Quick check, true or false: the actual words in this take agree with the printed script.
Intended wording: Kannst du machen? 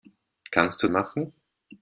true